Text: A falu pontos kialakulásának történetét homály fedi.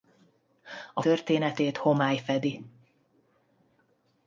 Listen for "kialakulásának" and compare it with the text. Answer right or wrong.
wrong